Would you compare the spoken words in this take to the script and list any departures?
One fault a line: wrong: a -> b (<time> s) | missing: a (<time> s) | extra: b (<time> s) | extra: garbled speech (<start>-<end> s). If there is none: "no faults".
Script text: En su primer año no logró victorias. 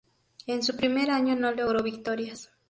no faults